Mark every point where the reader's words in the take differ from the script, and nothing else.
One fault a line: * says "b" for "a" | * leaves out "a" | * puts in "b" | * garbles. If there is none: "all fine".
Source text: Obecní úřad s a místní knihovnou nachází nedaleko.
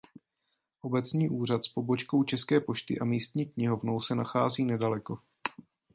* puts in "pobočkou České pošty"
* puts in "se"